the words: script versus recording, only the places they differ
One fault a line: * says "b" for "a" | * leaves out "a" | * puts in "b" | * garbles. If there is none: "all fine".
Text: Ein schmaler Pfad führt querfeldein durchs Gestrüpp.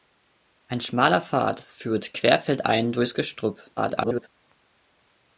* garbles